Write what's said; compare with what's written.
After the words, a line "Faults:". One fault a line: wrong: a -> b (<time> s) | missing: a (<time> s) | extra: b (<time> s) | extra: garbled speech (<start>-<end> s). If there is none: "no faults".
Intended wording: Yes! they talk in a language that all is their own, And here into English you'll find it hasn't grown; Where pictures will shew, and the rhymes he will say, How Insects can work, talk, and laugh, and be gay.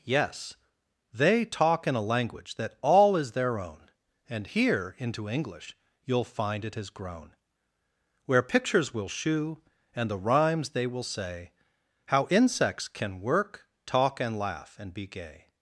Yes! they talk in a language that all is their own, And here into English you'll find it has grown; Where pictures will shew, and the rhymes they will say, How Insects can work, talk, and laugh, and be gay.
Faults:
wrong: hasn't -> has (6.7 s)
wrong: he -> they (10.7 s)